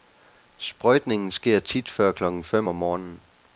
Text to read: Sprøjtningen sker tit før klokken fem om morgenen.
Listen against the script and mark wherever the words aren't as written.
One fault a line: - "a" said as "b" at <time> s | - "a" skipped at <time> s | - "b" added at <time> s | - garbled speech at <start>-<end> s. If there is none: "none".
none